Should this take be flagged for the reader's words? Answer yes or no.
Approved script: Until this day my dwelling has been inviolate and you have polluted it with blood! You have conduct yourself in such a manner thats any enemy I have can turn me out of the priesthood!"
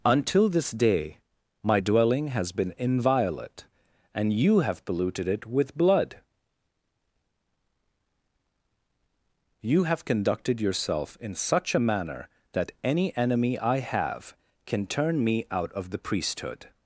yes